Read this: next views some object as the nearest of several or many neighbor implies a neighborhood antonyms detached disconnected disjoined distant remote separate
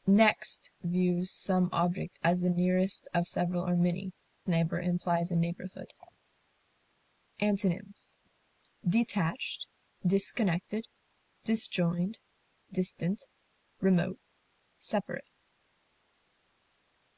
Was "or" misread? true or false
false